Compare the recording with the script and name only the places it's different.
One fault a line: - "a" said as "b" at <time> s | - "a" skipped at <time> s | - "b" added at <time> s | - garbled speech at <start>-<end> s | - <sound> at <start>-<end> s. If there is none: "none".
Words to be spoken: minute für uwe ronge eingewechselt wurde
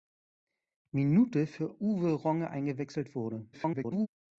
- garbled speech at 3.5-4.1 s